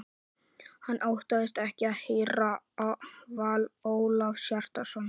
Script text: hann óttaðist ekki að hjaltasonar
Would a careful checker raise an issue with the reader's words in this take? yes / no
yes